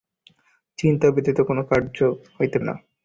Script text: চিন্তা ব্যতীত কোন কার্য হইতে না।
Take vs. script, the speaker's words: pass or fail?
pass